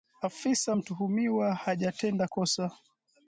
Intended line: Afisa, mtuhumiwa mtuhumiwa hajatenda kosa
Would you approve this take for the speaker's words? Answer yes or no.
no